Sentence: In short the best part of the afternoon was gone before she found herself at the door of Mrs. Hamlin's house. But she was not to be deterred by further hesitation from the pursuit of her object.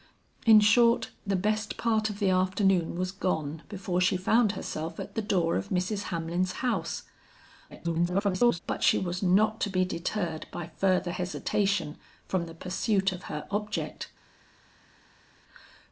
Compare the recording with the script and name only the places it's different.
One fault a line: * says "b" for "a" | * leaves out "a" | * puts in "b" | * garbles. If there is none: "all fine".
* garbles